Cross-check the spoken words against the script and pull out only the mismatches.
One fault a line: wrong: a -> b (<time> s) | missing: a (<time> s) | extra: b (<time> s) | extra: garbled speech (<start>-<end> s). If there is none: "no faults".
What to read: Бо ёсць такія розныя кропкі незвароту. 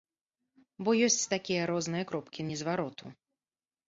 no faults